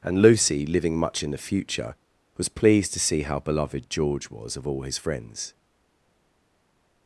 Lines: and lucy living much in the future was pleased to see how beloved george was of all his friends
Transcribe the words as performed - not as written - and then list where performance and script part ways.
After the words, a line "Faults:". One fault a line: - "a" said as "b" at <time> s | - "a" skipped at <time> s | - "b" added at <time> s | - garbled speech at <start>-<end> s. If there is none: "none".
and lucy living much in the future was pleased to see how beloved george was of all his friends
Faults:
none